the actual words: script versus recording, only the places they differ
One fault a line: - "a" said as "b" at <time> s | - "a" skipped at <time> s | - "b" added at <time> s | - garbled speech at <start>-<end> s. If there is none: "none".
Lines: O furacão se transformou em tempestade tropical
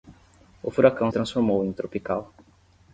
- "se" skipped at 1.1 s
- "tempestade" skipped at 1.7 s